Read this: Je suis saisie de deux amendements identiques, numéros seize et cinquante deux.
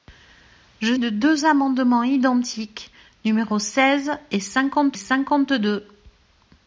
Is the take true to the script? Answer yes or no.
no